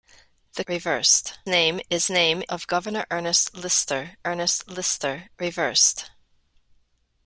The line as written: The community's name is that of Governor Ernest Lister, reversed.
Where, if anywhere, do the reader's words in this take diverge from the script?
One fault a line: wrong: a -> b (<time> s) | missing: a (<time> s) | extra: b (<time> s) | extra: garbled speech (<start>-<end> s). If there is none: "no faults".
wrong: community's -> reversed (0.7 s)
wrong: that -> name (2.1 s)
extra: Ernest Lister (4.2 s)